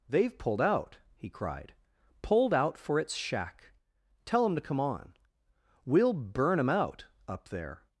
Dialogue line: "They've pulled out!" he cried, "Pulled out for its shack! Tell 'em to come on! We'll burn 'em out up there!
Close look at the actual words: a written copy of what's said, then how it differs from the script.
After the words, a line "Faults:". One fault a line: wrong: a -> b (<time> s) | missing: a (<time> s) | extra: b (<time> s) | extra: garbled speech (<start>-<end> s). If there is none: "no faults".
"They've pulled out!" he cried, "Pulled out for its shack! Tell 'em to come on! We'll burn 'em out up there!
Faults:
no faults